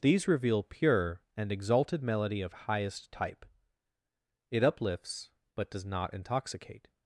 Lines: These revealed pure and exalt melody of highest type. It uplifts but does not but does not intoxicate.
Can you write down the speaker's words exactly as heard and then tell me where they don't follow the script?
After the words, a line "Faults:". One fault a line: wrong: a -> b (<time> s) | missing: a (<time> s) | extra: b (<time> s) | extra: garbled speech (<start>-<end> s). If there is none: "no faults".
These reveal pure and exalted melody of highest type. It uplifts but does not intoxicate.
Faults:
wrong: revealed -> reveal (0.3 s)
wrong: exalt -> exalted (1.5 s)
missing: but does not (6.1 s)